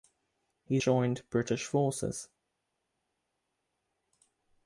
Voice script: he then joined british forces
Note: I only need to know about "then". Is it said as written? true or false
false